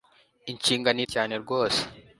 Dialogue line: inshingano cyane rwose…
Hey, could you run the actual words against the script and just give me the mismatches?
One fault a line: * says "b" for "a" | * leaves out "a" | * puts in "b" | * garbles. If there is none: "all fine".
all fine